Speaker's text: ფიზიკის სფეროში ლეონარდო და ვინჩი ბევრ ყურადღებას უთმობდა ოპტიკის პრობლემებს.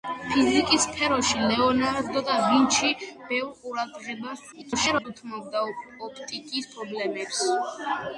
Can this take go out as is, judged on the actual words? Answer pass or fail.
fail